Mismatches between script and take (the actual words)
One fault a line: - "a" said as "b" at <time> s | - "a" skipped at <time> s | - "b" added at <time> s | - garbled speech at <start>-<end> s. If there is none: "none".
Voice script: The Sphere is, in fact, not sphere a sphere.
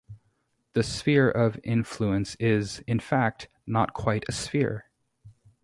- "of influence" added at 1.3 s
- "sphere" said as "quite" at 3.9 s